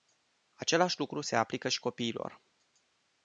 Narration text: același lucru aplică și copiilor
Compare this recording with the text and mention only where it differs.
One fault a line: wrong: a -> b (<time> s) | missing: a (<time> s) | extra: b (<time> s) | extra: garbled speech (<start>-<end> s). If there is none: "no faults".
extra: se (1.2 s)